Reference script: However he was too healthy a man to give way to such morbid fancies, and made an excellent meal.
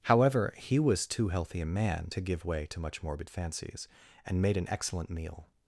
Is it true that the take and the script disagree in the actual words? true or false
true